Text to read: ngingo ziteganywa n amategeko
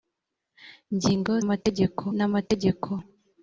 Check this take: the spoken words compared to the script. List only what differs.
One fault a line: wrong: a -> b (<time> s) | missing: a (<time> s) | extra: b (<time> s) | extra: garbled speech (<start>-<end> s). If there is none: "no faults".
wrong: ziteganywa -> amategeko (1.4 s)